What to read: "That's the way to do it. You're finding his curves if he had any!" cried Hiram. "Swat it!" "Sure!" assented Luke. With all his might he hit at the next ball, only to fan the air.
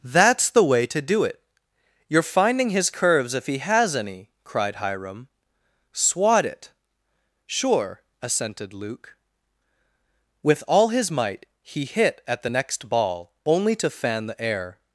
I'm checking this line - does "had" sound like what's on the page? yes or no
no